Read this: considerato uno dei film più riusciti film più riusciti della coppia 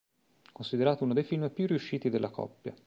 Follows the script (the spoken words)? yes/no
no